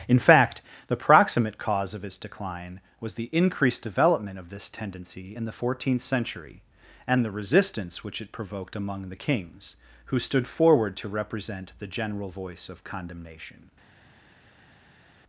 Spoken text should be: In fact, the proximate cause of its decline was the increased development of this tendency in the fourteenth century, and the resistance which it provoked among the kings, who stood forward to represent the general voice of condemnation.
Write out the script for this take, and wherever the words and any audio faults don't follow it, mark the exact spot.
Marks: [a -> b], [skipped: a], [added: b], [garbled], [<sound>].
In fact, the proximate cause of its decline was the increased development of this tendency in the fourteenth century, and the resistance which it provoked among the kings, who stood forward to represent the general voice of condemnation.